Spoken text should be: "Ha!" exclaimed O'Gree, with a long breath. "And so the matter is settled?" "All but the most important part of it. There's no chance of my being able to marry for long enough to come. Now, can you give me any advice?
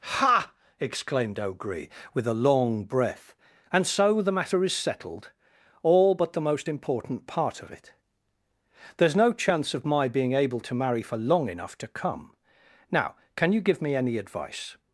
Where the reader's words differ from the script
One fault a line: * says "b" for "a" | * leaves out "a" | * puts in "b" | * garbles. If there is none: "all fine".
all fine